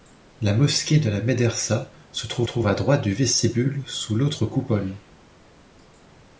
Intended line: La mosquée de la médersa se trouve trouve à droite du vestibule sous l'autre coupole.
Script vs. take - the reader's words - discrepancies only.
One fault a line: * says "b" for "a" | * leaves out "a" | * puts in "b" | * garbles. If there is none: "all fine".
all fine